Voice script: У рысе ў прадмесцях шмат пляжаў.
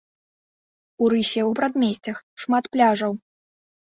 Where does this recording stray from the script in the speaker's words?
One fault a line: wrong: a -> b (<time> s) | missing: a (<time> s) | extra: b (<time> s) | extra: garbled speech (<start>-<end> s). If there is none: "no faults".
no faults